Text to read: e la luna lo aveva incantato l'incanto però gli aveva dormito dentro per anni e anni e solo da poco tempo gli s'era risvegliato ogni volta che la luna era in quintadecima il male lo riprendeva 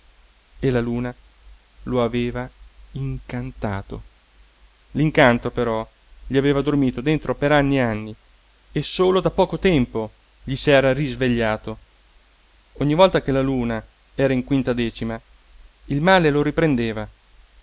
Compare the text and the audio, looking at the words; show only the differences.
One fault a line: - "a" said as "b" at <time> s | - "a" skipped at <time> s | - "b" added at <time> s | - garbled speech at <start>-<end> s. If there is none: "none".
none